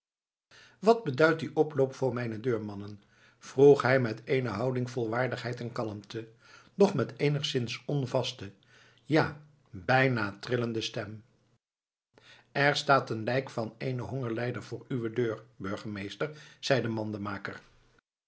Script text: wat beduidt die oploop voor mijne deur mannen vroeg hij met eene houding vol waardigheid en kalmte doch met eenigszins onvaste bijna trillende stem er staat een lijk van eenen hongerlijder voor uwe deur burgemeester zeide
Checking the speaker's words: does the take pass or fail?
fail